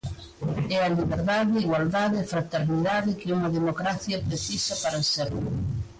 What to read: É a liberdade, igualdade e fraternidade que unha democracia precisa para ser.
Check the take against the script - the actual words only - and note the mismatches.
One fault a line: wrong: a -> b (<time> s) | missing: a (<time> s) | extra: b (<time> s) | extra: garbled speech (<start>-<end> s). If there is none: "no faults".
no faults